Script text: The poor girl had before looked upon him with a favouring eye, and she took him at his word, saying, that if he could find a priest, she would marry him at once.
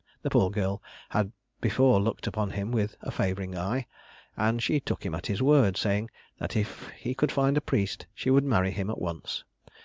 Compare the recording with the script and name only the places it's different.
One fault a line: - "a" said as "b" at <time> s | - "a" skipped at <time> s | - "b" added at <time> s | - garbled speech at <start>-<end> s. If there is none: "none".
none